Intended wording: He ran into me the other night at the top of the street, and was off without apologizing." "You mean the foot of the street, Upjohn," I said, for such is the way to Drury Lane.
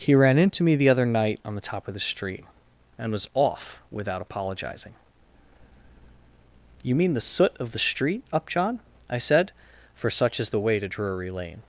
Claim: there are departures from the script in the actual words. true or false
true